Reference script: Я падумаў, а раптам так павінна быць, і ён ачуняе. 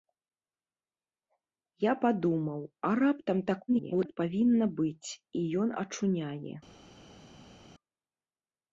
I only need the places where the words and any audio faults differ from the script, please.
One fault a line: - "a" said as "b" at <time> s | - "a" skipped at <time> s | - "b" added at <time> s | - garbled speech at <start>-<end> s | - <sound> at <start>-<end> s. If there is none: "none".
- garbled speech at 3.7-4.2 s